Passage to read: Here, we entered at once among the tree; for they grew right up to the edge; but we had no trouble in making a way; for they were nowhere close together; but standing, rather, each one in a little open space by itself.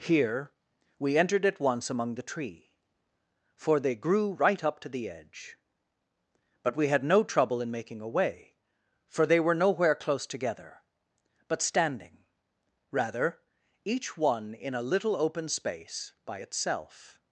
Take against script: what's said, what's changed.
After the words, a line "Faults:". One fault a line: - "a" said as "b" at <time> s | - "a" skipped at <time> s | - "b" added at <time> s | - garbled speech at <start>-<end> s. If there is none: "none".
Here, we entered at once among the tree; for they grew right up to the edge; but we had no trouble in making a way; for they were nowhere close together; but standing, rather, each one in a little open space by itself.
Faults:
none